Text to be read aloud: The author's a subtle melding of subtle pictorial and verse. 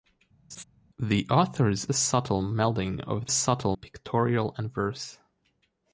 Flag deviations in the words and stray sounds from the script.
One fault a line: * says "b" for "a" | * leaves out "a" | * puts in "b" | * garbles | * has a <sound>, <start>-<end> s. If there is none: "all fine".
* has a laugh, 0.5-0.6 s